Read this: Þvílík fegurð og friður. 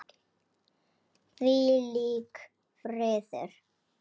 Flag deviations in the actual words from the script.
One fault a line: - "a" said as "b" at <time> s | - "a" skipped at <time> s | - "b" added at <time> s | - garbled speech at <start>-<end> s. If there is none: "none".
- "fegurð og" skipped at 2.4 s